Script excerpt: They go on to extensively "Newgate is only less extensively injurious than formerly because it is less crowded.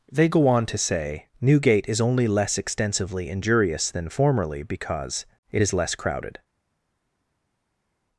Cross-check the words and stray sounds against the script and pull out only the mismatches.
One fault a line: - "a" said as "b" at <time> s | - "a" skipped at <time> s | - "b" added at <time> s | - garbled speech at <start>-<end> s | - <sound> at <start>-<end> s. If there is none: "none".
- "extensively" said as "say" at 0.8 s